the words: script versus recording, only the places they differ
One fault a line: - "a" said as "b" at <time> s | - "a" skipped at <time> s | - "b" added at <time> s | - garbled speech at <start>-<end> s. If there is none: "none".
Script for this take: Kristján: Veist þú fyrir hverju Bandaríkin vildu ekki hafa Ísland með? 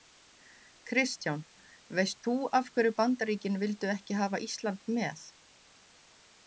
- "fyrir" said as "af" at 2.6 s